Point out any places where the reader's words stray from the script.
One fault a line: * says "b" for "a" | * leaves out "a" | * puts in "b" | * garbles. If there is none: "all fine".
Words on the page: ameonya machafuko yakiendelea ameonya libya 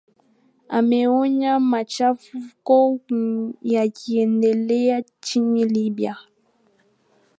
* says "nchini" for "ameonya"